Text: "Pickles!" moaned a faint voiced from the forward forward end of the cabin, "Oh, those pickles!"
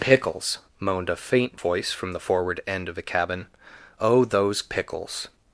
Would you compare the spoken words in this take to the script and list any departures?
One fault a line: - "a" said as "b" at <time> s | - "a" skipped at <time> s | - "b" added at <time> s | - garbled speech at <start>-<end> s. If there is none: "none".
- "voiced" said as "voice" at 1.6 s
- "forward" skipped at 2.6 s